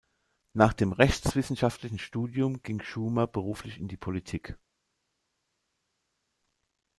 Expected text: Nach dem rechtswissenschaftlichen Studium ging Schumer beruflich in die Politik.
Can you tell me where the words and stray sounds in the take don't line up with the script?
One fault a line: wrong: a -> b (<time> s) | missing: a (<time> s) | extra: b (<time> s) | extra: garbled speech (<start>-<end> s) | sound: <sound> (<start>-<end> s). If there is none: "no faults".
no faults